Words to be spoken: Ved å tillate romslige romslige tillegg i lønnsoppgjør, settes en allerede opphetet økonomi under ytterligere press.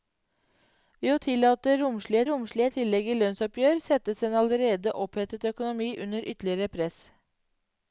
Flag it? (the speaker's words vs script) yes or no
no